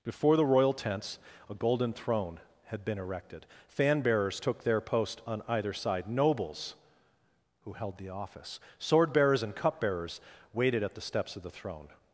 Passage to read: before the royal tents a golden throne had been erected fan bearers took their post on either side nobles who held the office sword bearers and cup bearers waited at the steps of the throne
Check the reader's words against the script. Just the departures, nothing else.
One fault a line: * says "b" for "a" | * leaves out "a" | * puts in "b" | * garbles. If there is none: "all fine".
all fine